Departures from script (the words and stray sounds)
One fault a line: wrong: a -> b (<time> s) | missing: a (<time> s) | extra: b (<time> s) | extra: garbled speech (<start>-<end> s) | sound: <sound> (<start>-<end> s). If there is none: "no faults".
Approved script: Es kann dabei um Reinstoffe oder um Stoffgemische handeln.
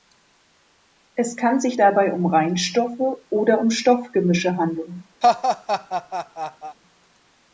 extra: sich (1.6 s)
sound: laugh (5.2-6.8 s)